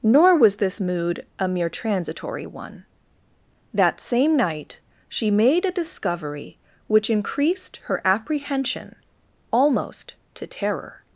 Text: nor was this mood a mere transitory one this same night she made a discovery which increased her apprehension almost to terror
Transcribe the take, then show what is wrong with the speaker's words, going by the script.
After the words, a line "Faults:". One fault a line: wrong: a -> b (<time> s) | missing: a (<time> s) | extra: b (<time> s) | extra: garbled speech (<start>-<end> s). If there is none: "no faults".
nor was this mood a mere transitory one that same night she made a discovery which increased her apprehension almost to terror
Faults:
wrong: this -> that (3.7 s)